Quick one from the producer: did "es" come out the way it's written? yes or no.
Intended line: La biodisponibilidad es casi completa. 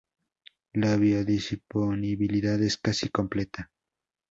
yes